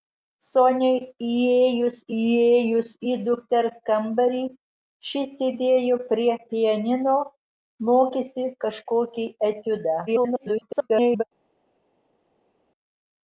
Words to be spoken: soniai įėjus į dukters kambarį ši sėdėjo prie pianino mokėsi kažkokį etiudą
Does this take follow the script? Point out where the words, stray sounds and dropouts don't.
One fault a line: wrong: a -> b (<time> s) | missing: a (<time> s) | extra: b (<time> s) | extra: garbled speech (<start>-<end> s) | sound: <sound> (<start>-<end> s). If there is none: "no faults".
extra: įėjus (2.2 s)
extra: garbled speech (10.1-11.2 s)